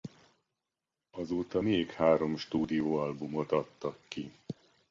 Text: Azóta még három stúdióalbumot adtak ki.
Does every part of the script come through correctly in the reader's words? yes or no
yes